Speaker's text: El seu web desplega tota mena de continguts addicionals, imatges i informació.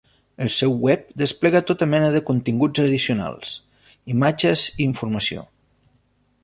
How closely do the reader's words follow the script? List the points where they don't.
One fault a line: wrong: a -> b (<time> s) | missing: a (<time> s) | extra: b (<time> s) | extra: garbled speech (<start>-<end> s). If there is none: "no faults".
no faults